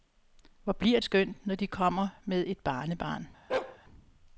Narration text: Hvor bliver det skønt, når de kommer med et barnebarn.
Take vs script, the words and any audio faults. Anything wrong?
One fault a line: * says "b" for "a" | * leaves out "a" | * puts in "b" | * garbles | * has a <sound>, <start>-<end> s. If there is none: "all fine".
* leaves out "det"
* has a bark, 3.5-3.8 s